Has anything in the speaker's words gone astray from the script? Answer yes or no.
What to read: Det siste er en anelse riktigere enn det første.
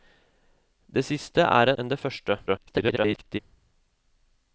yes